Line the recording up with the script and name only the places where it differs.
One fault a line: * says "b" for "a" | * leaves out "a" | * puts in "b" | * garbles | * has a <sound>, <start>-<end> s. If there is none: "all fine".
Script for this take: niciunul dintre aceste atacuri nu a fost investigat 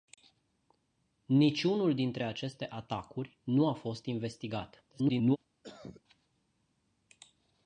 * garbles
* has a cough, 5.6-6.0 s